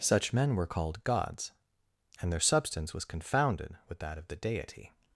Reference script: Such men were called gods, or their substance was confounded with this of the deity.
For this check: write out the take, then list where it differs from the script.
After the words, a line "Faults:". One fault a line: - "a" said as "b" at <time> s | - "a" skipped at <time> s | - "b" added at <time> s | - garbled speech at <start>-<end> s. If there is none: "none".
Such men were called gods, and their substance was confounded with that of the deity.
Faults:
- "or" said as "and" at 2.2 s
- "this" said as "that" at 4.0 s